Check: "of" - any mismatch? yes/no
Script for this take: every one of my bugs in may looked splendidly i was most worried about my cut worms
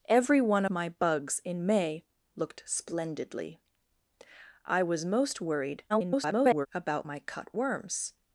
yes